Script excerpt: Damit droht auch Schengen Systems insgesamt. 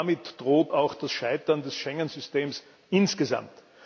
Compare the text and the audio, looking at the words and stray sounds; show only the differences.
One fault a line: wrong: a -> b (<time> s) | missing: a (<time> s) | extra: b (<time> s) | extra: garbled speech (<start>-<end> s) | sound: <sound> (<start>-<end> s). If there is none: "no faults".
extra: das Scheitern des (0.9 s)